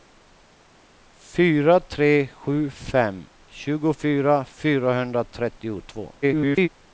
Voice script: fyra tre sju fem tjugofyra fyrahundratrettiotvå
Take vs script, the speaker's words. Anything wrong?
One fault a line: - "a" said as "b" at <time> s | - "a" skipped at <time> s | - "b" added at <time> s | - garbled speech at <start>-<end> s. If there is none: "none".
- garbled speech at 6.2-6.7 s